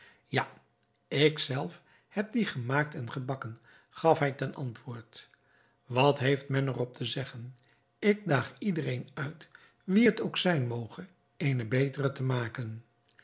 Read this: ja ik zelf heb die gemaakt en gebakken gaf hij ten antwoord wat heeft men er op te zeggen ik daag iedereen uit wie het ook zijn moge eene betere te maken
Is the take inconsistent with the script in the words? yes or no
no